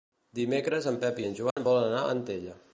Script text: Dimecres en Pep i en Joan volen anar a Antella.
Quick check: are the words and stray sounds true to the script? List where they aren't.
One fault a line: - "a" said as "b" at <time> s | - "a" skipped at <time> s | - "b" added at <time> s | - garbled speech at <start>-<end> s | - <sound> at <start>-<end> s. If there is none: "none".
- dropout at 1.5-1.6 s